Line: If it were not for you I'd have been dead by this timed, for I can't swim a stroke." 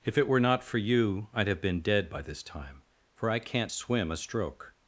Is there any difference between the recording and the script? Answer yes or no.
yes